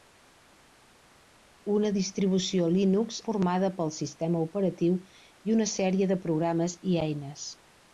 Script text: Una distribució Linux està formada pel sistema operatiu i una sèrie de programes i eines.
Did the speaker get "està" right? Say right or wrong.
wrong